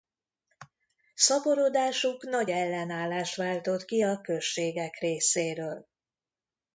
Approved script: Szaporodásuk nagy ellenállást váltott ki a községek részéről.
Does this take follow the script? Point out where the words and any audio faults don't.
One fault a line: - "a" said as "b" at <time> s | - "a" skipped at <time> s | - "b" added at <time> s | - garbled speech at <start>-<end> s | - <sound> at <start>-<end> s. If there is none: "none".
none